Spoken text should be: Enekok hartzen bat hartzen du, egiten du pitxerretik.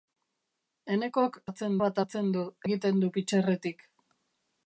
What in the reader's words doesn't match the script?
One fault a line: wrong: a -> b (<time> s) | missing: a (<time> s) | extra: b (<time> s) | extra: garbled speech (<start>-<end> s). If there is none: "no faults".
no faults